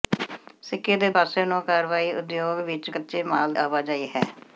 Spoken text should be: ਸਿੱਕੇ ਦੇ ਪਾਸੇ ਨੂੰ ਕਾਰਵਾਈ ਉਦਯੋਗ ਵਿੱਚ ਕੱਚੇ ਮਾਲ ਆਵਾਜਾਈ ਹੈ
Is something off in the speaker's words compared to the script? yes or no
no